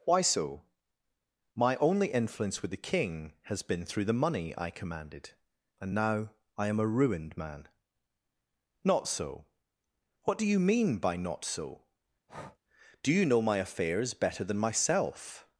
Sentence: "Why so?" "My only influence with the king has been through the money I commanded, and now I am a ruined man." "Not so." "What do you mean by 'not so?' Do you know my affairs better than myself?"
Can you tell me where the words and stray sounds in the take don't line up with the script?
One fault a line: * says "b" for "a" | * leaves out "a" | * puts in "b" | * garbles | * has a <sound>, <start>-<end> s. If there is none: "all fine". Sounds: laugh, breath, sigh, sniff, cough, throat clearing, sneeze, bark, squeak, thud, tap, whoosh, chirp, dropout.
* has a breath, 12.3-12.6 s